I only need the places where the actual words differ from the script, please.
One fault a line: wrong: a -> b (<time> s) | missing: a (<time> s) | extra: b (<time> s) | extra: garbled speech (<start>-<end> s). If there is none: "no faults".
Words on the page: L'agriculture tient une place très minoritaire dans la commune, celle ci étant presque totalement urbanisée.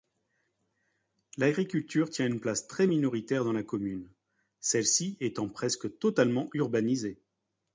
no faults